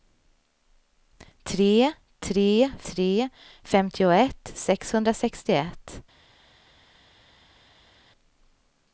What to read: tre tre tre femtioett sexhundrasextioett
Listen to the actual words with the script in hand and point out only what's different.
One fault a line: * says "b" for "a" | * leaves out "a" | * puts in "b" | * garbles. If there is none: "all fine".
all fine